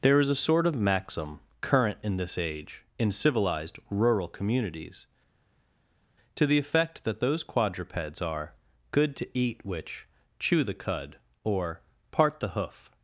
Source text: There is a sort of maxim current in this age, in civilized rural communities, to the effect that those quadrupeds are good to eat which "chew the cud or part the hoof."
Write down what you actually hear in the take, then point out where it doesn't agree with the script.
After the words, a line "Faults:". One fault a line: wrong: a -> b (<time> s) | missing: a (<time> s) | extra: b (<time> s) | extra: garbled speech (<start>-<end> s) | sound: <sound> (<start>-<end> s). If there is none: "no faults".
There is a sort of maxim current in this age, in civilized rural communities, to the effect that those quadrupeds are good to eat which "chew the cud or part the hoof."
Faults:
no faults